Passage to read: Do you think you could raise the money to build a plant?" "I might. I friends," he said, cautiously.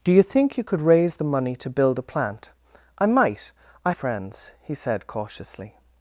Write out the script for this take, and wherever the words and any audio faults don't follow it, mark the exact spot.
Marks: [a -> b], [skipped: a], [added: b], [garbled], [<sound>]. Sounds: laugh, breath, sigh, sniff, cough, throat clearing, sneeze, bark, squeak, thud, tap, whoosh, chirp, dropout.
Do you think you could raise the money to build a plant?" "I might. I friends," he said, cautiously.